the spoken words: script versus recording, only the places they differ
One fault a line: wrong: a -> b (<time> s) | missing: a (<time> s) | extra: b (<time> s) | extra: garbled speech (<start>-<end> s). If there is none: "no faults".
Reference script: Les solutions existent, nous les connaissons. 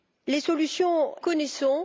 missing: existent nous les (1.1 s)